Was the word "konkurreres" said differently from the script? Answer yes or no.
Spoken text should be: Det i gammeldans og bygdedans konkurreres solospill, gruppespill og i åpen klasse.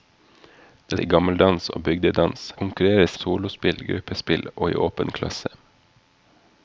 no